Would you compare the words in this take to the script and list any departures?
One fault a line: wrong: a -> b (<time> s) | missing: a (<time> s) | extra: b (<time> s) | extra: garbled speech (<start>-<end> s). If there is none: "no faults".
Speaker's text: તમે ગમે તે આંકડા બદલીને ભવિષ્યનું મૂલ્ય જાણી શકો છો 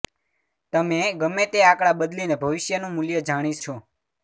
missing: શકો (3.6 s)